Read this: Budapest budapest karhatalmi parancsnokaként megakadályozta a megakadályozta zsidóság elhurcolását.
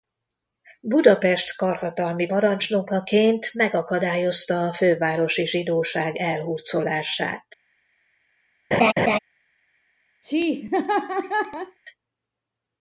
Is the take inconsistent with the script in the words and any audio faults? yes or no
yes